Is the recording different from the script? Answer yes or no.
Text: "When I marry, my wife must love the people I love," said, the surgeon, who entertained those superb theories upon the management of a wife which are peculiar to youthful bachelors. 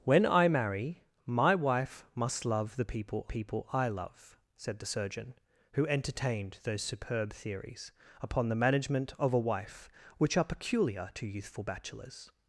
yes